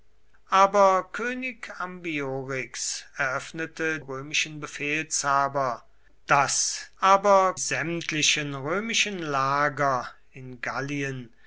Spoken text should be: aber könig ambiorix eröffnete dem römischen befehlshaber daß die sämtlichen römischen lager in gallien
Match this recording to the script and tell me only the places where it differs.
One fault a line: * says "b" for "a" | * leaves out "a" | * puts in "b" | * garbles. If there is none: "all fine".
* leaves out "dem"
* says "aber" for "die"